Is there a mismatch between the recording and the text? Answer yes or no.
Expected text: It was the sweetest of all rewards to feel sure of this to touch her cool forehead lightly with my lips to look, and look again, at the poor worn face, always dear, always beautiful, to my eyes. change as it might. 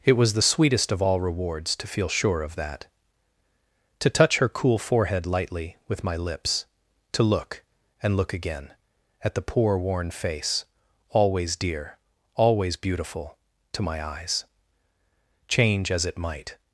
yes